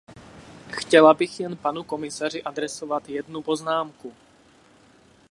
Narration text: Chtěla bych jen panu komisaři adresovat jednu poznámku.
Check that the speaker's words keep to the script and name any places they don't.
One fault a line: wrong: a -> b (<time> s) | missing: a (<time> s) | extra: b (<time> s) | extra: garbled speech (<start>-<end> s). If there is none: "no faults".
no faults